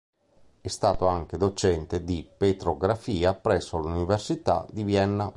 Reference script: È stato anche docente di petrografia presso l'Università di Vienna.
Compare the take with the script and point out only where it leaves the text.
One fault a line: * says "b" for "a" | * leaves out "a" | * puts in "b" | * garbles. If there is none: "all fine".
all fine